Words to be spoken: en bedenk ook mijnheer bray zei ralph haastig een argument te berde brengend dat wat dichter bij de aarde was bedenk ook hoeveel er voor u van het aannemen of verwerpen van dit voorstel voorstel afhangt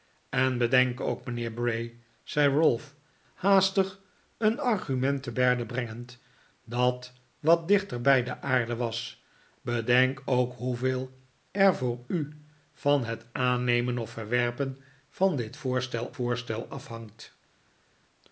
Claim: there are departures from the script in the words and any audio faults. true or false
false